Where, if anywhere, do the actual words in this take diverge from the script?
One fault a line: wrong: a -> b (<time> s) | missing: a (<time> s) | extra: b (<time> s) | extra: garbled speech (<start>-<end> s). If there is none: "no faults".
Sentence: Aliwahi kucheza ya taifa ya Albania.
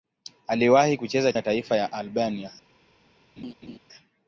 no faults